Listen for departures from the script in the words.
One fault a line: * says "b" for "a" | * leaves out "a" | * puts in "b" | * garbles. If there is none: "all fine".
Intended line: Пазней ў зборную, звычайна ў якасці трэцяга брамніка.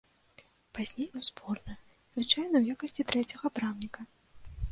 all fine